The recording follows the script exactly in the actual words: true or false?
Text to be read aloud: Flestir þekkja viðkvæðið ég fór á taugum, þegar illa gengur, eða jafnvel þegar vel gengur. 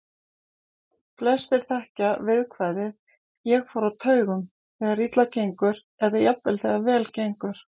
true